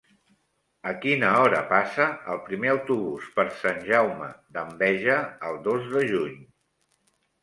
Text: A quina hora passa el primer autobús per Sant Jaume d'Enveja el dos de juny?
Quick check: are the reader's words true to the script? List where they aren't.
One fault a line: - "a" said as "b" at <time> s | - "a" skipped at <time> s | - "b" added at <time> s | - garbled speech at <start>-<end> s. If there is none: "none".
none